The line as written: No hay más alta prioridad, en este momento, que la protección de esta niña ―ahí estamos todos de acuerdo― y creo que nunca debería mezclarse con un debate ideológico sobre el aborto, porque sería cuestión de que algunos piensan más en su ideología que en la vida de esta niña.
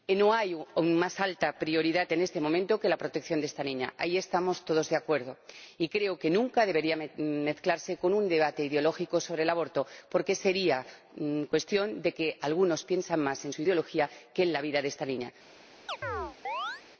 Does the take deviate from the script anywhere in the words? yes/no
no